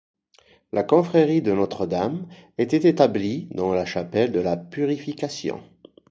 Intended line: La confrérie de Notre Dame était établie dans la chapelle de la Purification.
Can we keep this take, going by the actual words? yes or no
yes